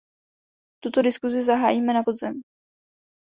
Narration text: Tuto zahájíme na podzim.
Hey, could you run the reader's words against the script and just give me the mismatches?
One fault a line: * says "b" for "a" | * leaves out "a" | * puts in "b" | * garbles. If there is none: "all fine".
* puts in "diskusi"